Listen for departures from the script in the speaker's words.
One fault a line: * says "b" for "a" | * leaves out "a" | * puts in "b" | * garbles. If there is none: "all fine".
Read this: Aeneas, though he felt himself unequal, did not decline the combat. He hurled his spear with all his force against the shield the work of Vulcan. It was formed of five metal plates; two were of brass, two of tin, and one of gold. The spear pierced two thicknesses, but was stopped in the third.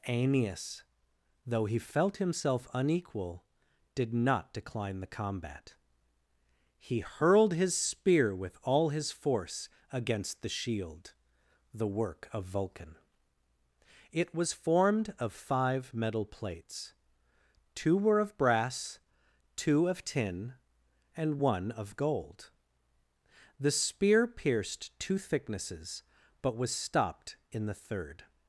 all fine